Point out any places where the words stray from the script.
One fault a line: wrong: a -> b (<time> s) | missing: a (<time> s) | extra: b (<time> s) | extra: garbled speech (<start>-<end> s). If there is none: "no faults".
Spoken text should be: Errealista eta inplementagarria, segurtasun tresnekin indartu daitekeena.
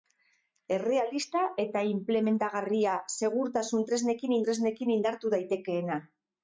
extra: tresnekin (4.5 s)